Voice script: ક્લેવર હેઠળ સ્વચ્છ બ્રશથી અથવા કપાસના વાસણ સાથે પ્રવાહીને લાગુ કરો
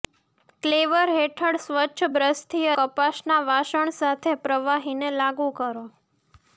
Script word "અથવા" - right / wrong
wrong